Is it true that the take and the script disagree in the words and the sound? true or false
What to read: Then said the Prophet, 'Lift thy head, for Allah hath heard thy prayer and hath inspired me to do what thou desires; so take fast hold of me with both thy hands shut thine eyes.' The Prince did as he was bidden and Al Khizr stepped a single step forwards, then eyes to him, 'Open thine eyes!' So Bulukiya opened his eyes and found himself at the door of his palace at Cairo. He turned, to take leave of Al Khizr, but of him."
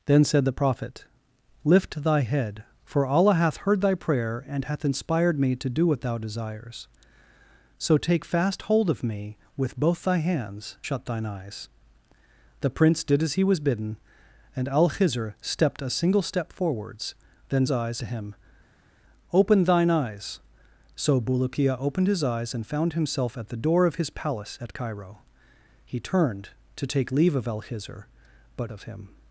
false